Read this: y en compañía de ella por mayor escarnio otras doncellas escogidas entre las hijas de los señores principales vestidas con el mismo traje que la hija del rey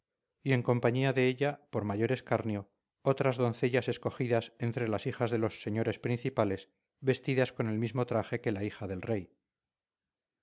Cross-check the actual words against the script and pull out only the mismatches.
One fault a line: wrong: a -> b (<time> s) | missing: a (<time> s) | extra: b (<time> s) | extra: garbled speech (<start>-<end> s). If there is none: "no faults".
no faults